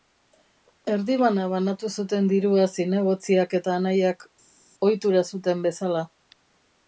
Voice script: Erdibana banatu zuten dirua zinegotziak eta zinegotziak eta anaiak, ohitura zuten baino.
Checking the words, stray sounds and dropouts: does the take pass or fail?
fail